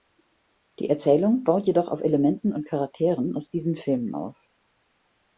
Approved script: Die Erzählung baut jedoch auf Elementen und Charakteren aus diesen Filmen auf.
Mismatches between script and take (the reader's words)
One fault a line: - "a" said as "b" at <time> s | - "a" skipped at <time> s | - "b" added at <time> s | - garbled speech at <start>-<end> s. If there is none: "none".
none